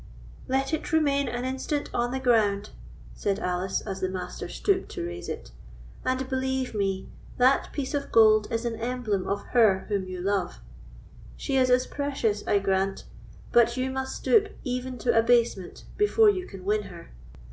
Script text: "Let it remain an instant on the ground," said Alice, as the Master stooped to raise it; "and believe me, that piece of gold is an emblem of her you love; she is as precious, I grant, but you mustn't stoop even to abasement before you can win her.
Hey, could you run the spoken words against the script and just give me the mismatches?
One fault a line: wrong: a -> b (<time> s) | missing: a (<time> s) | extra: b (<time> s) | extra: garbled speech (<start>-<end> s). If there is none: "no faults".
extra: whom (9.9 s)
wrong: mustn't -> must (13.9 s)